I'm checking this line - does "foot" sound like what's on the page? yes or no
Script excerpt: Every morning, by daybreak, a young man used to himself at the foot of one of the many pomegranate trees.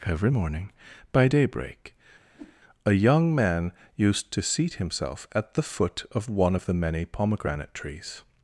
yes